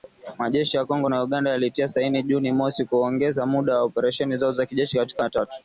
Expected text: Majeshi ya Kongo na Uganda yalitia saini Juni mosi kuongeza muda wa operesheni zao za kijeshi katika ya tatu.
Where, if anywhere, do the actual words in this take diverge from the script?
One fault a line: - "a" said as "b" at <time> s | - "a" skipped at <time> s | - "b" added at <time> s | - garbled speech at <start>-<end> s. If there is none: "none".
none